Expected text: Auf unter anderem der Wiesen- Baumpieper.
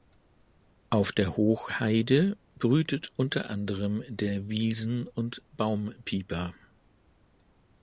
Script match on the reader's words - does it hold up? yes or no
no